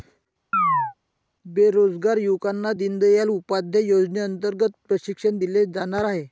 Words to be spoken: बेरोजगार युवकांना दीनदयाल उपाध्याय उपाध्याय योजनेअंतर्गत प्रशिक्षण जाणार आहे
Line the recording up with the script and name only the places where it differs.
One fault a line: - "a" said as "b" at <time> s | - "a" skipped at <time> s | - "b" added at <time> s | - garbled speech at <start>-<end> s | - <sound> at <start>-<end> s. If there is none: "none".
- chirp at 0.5-0.9 s
- "उपाध्याय" skipped at 3.8 s
- "दिले" added at 5.4 s